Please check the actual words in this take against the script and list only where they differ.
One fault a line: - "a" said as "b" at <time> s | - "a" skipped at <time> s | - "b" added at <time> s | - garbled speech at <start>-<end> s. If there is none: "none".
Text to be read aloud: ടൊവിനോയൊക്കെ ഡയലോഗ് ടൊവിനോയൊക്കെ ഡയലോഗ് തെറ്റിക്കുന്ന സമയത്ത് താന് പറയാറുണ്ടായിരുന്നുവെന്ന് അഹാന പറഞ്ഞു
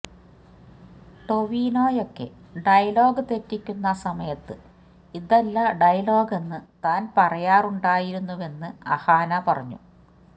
- "ടൊവിനോയൊക്കെ ഡയലോഗ് തെറ്റിക്കുന്ന സമയത്ത്" said as "തെറ്റിക്കുന്ന സമയത്ത് ഇതല്ല ഡയലോഗെന്ന്" at 3.3 s